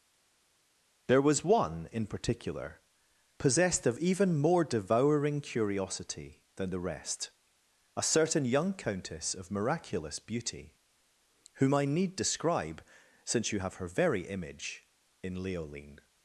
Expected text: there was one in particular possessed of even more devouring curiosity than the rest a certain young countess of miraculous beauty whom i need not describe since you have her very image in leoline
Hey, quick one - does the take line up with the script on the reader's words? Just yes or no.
no